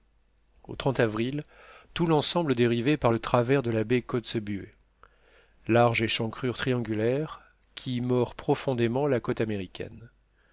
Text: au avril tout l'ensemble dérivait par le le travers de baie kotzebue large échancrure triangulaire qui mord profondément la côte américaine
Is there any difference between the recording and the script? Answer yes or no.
yes